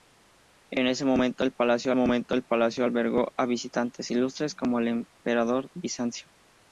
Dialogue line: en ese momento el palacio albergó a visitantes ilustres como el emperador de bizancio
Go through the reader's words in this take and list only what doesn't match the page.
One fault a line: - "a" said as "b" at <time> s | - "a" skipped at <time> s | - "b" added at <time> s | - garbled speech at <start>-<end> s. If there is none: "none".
- "momento el palacio" added at 1.9 s
- "de" skipped at 5.7 s